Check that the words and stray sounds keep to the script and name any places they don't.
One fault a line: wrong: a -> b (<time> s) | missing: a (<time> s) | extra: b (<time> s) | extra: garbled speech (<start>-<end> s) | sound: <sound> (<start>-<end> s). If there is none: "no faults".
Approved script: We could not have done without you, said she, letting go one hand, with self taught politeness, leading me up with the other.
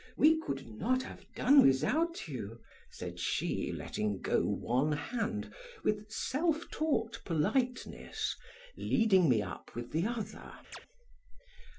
sound: chirp (10.7-10.8 s)